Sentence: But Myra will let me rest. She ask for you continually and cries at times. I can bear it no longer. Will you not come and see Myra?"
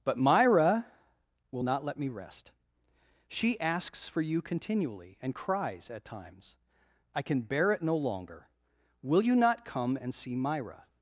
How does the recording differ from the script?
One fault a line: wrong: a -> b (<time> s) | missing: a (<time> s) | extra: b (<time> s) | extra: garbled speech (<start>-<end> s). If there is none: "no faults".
extra: not (1.6 s)
wrong: ask -> asks (3.6 s)